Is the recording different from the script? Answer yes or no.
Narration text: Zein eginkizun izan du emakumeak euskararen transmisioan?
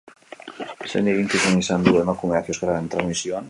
no